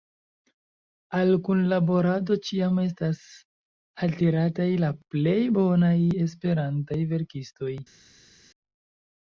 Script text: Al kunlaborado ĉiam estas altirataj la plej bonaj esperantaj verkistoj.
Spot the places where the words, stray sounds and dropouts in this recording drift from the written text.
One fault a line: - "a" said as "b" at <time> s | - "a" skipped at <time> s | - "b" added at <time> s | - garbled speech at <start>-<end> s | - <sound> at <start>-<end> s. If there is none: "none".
none